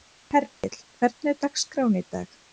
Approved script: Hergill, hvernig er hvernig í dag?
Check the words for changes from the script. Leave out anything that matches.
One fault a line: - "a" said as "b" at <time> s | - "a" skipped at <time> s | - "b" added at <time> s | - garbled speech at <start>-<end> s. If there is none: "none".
- "hvernig" said as "dagskráin" at 1.4 s